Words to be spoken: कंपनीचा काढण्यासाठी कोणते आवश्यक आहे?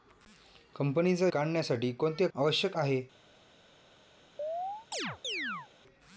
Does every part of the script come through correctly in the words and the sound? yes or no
no